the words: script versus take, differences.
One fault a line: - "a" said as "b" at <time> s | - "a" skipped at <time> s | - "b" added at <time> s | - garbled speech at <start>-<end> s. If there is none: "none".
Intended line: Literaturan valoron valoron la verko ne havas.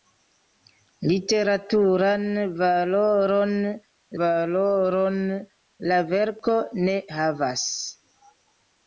none